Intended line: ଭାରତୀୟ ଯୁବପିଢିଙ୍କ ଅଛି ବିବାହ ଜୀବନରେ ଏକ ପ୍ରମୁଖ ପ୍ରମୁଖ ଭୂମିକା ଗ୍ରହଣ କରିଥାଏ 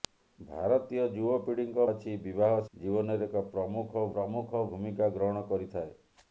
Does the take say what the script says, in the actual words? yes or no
yes